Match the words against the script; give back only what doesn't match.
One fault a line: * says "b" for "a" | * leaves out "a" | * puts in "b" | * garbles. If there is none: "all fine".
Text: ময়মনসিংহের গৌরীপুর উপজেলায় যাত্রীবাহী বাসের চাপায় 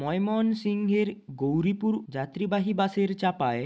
* leaves out "উপজেলায়"